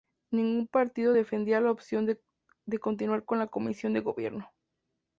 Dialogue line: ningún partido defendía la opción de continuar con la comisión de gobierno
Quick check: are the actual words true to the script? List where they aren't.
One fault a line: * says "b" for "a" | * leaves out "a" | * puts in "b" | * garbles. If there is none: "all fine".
all fine